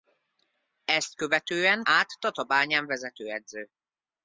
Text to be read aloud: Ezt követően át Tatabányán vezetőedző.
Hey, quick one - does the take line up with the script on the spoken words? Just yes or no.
yes